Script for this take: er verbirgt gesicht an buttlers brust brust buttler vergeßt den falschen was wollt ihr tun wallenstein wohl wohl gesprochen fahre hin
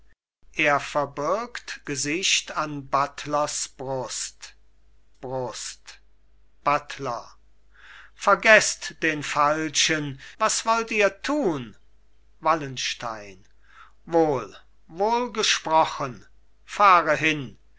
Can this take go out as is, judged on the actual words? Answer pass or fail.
pass